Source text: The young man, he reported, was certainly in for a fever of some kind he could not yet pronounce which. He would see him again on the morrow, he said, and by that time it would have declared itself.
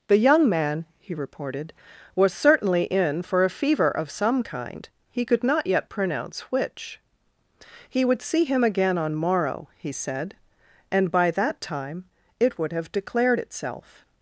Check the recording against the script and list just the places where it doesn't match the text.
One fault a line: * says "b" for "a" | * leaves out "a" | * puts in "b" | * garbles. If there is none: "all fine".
* leaves out "the"